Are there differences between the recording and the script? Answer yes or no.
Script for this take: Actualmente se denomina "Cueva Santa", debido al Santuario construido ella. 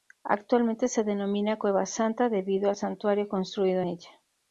no